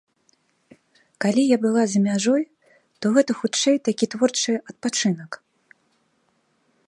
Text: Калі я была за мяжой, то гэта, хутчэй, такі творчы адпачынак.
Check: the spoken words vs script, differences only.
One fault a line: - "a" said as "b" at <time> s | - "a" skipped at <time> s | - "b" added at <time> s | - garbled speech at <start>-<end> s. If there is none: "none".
none